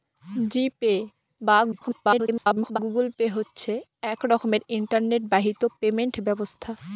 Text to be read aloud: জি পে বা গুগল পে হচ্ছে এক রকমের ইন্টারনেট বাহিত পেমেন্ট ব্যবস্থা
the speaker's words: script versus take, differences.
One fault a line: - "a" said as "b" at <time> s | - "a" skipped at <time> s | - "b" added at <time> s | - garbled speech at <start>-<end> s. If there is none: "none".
- garbled speech at 1.7-2.8 s